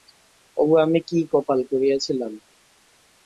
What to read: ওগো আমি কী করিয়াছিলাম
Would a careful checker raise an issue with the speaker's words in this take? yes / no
yes